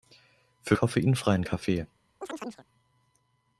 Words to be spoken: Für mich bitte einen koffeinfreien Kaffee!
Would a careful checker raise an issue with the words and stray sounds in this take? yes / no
yes